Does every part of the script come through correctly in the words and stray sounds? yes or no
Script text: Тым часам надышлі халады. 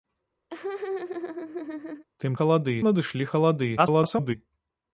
no